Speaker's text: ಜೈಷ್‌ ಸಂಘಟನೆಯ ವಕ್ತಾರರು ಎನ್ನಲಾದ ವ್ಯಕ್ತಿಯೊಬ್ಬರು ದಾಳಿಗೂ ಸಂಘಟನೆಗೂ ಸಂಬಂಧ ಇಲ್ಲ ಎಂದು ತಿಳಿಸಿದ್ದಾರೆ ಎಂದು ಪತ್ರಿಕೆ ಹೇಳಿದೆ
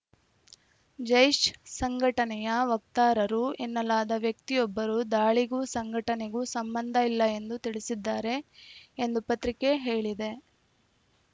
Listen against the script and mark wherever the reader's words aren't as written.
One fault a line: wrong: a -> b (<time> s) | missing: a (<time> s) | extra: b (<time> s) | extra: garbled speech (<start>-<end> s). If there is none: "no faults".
no faults